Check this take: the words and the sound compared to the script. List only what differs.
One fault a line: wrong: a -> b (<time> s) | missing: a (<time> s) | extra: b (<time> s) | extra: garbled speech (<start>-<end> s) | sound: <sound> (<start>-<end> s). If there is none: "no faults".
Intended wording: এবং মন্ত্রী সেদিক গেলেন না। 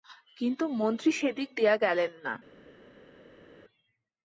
wrong: এবং -> কিন্তু (0.4 s)
extra: দিয়া (1.6 s)